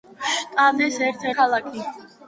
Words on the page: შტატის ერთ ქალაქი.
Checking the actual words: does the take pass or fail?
pass